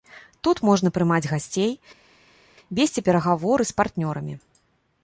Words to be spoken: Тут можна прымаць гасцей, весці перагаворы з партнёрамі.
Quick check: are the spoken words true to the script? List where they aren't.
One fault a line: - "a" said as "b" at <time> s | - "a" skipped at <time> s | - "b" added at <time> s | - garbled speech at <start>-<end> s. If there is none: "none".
none